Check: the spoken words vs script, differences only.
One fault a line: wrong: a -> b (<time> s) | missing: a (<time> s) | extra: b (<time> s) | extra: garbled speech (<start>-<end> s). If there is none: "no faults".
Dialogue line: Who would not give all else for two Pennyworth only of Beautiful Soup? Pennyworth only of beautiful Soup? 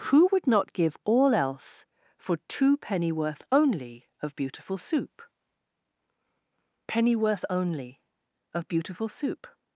no faults